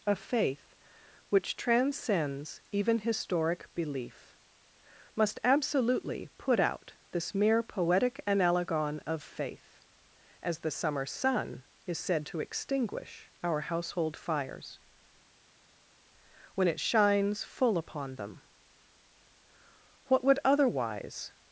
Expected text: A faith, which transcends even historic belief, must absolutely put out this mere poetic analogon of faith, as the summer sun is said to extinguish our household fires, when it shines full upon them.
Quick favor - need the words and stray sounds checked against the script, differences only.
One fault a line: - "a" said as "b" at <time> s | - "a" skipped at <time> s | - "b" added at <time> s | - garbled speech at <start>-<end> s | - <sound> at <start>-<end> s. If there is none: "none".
- "What would otherwise" added at 20.1 s